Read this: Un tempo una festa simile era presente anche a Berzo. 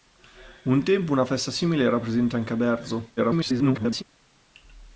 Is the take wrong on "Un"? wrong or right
right